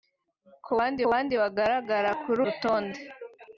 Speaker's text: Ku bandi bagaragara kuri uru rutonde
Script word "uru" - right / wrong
wrong